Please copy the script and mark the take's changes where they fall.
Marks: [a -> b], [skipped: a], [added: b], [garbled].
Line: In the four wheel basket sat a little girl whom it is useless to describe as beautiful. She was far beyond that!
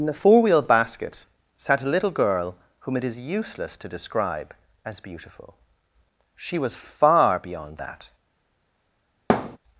In the four wheel basket sat a little girl whom it is useless to describe as beautiful. She was far beyond that!